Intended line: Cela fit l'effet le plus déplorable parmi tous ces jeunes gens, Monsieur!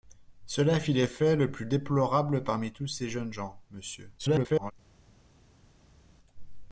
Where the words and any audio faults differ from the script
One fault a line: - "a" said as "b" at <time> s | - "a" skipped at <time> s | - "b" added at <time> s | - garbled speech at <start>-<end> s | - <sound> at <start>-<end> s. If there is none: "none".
- garbled speech at 4.2-4.7 s